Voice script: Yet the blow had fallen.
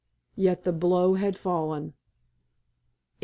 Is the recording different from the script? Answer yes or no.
no